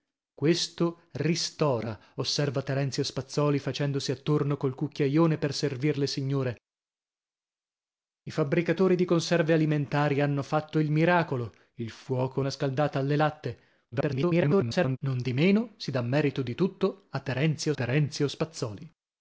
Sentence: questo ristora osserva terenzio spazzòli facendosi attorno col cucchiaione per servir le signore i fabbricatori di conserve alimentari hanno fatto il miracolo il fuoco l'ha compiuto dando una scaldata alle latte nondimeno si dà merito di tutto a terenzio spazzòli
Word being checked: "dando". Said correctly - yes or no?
no